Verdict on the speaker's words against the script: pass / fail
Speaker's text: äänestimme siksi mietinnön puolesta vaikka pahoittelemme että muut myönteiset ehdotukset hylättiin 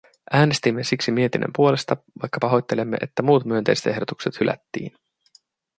pass